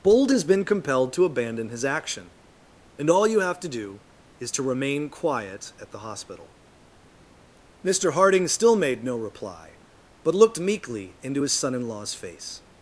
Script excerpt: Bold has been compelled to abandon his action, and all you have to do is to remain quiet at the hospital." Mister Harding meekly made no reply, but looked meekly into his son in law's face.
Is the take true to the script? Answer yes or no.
no